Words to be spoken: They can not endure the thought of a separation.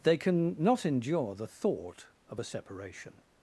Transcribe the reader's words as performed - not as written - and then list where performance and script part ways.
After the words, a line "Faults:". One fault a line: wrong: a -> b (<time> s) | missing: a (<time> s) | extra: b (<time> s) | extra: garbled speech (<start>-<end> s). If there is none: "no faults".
They can not endure the thought of a separation.
Faults:
no faults